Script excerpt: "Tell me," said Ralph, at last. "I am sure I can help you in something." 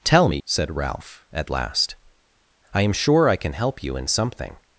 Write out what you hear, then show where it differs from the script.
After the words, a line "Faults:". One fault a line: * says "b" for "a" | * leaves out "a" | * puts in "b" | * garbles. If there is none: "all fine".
"Tell me," said Ralph, at last. "I am sure I can help you in something."
Faults:
all fine